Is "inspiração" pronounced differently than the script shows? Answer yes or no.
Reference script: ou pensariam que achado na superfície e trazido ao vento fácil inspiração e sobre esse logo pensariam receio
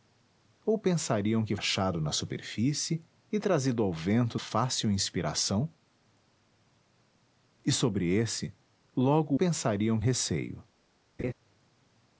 no